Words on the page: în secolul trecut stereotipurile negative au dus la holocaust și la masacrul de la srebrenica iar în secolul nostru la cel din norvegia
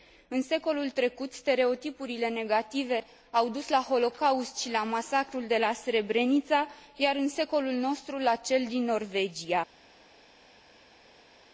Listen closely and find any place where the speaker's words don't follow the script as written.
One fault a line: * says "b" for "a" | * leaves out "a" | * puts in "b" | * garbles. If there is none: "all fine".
all fine